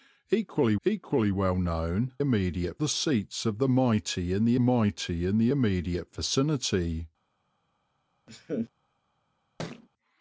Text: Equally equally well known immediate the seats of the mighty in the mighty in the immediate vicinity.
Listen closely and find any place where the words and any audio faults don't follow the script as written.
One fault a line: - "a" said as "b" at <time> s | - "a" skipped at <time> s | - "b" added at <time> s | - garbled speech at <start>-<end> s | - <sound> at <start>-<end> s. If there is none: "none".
- laugh at 8.3-8.7 s
- thud at 9.6-9.9 s